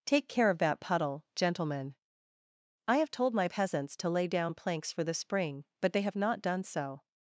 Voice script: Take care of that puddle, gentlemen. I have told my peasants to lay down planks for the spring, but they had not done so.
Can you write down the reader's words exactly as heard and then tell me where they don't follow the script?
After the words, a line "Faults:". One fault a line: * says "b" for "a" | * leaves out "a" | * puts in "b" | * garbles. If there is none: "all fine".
Take care of that puddle, gentlemen. I have told my peasants to lay down planks for the spring, but they have not done so.
Faults:
* says "have" for "had"